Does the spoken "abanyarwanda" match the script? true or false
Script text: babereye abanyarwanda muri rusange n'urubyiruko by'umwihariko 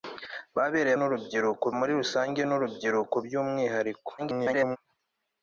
false